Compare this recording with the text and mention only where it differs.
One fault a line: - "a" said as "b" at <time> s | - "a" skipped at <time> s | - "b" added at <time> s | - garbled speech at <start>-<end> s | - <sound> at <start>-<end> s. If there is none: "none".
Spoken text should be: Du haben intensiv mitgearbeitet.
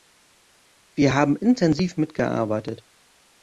- "Du" said as "Wir" at 0.9 s